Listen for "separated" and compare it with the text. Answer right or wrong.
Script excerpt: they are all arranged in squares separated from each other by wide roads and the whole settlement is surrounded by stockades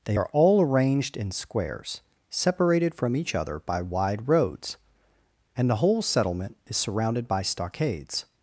right